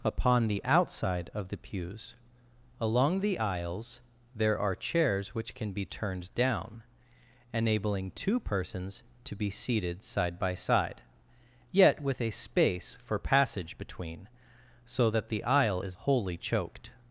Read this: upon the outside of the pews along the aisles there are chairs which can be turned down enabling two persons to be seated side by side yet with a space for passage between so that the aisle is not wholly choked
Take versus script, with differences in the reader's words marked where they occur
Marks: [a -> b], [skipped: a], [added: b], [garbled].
upon the outside of the pews along the aisles there are chairs which can be turned down enabling two persons to be seated side by side yet with a space for passage between so that the aisle is [skipped: not] wholly choked